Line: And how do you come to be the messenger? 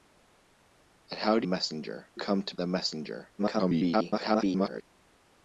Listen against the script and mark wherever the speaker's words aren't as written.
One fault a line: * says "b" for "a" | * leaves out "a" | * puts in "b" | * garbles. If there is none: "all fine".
* says "messenger" for "you"
* leaves out "be"
* garbles